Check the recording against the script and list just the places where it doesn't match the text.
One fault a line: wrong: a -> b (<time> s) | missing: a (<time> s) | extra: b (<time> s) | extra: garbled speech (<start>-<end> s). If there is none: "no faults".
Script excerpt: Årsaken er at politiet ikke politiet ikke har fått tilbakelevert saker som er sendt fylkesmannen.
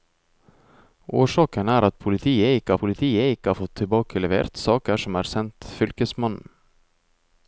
no faults